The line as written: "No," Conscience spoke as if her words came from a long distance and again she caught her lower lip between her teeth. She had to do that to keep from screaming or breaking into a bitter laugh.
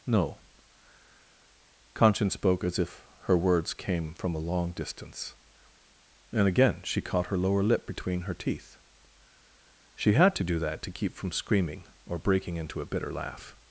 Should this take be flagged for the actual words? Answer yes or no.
no